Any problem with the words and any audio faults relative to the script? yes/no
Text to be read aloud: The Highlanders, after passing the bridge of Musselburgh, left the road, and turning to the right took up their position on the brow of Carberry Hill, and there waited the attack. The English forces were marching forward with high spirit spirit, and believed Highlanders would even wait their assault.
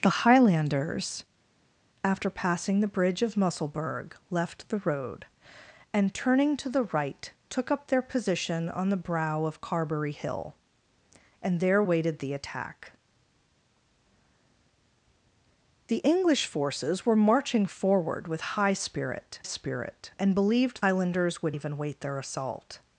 no